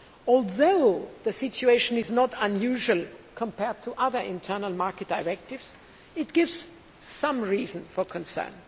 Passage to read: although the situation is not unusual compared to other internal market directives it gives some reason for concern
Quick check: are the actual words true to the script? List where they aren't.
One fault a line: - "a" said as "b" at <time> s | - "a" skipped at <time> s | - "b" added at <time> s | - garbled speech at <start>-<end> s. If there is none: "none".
none